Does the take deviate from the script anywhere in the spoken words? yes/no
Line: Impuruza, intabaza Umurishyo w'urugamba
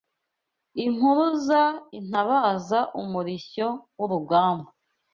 no